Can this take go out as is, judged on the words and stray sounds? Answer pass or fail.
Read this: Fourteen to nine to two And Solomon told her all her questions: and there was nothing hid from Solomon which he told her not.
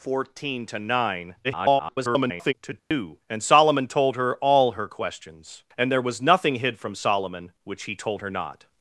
fail